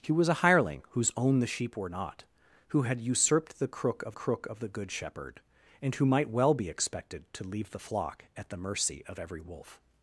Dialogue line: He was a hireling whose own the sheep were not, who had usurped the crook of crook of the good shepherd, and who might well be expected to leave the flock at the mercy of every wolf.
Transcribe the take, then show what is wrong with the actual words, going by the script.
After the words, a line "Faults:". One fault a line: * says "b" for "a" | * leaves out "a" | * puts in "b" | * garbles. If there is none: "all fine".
He was a hireling whose own the sheep were not, who had usurped the crook of crook of the good shepherd, and who might well be expected to leave the flock at the mercy of every wolf.
Faults:
all fine